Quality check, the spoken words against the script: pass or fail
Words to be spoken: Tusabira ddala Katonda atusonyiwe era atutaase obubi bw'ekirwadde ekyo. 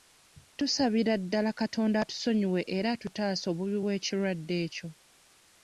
pass